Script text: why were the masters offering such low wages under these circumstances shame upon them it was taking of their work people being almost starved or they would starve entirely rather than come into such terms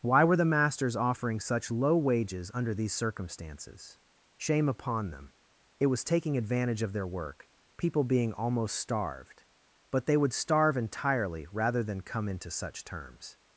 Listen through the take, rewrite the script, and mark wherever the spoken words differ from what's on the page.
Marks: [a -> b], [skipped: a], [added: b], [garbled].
why were the masters offering such low wages under these circumstances shame upon them it was taking [added: advantage] of their work people being almost starved [or -> but] they would starve entirely rather than come into such terms